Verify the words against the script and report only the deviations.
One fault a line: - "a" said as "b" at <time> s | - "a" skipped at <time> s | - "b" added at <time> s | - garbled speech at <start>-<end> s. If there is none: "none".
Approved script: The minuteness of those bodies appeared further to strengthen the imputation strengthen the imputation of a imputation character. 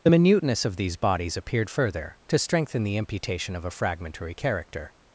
- "those" said as "these" at 0.8 s
- "strengthen the imputation" skipped at 3.6 s
- "imputation" said as "fragmentary" at 3.7 s